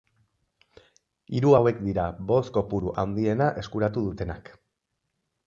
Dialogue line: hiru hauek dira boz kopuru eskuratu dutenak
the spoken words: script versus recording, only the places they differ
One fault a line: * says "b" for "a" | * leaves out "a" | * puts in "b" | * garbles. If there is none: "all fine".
* puts in "handiena"